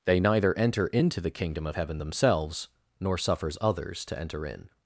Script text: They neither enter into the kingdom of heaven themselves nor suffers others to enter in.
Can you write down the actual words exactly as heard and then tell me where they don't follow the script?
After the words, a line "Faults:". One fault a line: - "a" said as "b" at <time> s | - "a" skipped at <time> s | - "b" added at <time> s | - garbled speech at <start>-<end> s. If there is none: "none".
They neither enter into the kingdom of heaven themselves nor suffers others to enter in.
Faults:
none